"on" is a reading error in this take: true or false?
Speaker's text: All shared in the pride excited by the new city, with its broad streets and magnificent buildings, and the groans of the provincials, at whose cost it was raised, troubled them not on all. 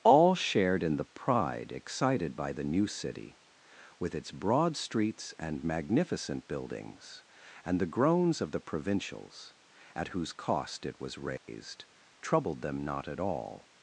true